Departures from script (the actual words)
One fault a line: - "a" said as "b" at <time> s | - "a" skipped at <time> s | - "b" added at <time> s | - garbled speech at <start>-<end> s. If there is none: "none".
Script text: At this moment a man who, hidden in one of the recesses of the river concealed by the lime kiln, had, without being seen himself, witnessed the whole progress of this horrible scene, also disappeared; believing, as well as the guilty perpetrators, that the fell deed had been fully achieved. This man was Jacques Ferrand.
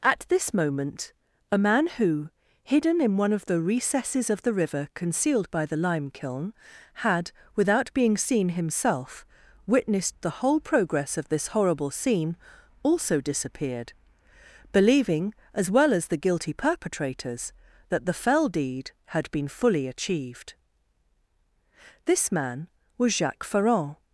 none